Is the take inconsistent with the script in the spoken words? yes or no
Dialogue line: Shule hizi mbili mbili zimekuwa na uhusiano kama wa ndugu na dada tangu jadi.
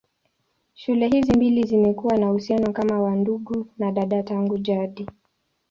yes